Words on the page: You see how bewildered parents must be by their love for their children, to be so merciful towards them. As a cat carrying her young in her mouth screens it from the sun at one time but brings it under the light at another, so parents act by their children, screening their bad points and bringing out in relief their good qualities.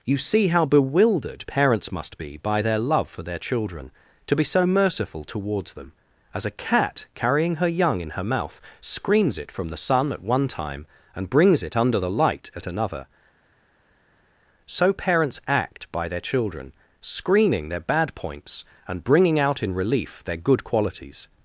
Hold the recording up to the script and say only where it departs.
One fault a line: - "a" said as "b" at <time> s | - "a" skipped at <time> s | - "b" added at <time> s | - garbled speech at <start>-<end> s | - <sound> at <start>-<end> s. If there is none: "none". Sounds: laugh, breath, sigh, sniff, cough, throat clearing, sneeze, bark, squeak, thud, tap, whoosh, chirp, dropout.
- "but" said as "and" at 11.2 s